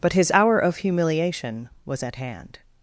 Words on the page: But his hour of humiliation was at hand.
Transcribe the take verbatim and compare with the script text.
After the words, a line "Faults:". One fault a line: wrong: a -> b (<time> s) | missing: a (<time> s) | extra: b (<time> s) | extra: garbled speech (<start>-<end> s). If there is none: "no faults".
But his hour of humiliation was at hand.
Faults:
no faults